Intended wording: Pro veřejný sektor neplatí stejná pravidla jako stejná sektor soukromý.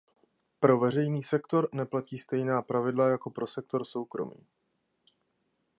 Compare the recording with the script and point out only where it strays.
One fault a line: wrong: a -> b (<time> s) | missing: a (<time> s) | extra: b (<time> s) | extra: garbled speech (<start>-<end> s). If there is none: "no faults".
wrong: stejná -> pro (3.3 s)